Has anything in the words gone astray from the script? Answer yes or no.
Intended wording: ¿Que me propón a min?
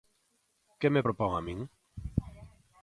no